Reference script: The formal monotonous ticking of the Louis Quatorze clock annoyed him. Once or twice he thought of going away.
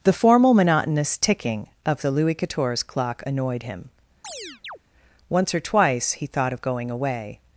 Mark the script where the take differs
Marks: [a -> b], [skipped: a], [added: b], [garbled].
The formal monotonous ticking of the Louis Quatorze clock annoyed him. Once or twice he thought of going away.